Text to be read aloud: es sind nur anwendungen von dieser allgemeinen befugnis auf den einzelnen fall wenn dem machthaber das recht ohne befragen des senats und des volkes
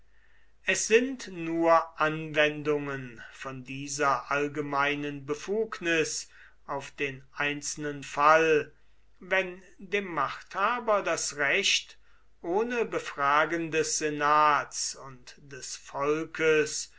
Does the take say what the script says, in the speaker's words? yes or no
yes